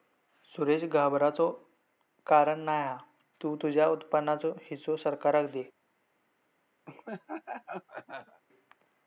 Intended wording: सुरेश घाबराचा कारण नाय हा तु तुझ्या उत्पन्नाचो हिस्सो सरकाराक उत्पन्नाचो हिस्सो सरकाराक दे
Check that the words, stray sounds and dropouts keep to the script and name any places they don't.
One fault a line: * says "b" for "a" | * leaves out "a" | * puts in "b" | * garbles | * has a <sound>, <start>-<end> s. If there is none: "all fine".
* leaves out "उत्पन्नाचो हिस्सो सरकाराक"
* has a laugh, 6.9-8.4 s